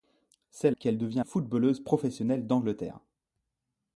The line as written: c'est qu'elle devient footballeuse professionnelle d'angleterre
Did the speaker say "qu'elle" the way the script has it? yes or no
yes